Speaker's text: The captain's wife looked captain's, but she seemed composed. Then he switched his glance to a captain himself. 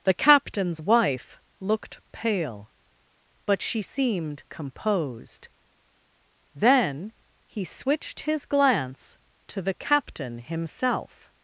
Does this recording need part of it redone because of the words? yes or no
yes